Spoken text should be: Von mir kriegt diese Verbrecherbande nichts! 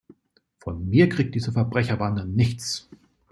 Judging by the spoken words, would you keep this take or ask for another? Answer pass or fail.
pass